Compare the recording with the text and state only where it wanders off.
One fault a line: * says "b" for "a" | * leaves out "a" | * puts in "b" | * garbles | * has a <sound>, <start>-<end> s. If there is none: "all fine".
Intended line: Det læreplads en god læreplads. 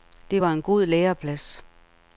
* says "var" for "læreplads"